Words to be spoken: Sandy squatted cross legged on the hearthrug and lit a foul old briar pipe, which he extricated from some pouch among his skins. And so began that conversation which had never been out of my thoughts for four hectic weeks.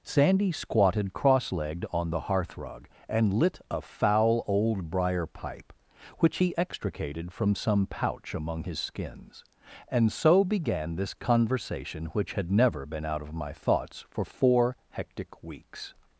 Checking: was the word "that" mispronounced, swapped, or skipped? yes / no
yes